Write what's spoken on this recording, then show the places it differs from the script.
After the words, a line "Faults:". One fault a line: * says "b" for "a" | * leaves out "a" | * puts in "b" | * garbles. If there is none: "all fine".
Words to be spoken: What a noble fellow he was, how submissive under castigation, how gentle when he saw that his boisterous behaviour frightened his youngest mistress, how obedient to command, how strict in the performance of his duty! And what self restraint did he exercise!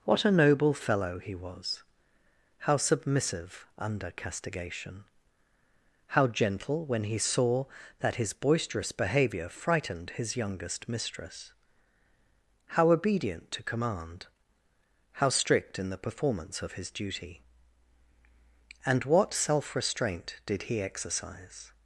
What a noble fellow he was, how submissive under castigation, how gentle when he saw that his boisterous behaviour frightened his youngest mistress, how obedient to command, how strict in the performance of his duty! And what self restraint did he exercise!
Faults:
all fine